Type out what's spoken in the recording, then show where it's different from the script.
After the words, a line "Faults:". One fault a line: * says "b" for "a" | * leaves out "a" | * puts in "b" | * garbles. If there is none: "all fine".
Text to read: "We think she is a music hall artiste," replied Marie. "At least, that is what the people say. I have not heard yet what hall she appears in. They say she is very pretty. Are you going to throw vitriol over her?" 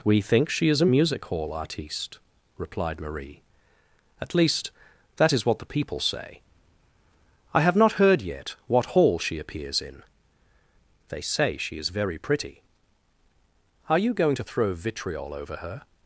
"We think she is a music hall artiste," replied Marie. "At least, that is what the people say. I have not heard yet what hall she appears in. They say she is very pretty. Are you going to throw vitriol over her?"
Faults:
all fine